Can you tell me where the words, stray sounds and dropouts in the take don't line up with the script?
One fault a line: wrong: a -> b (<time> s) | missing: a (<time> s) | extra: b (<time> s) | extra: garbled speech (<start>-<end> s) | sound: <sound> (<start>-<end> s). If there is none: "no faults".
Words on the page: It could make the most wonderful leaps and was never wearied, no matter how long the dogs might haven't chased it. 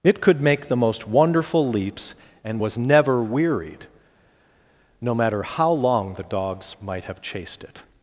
wrong: haven't -> have (7.0 s)